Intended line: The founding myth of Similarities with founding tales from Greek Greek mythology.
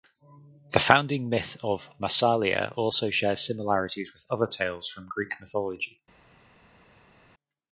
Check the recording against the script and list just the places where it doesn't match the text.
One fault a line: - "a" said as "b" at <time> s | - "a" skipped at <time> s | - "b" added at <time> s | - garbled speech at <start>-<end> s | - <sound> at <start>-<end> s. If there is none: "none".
- "Massalia also shares" added at 2.0 s
- "founding" said as "other" at 4.3 s
- "Greek" skipped at 5.3 s